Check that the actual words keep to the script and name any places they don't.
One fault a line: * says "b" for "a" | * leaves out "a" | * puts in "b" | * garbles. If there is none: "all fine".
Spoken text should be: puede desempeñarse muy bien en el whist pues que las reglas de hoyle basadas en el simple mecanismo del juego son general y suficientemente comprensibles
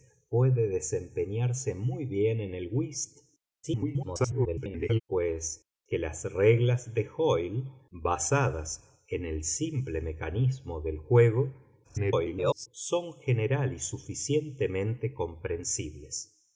* garbles
* garbles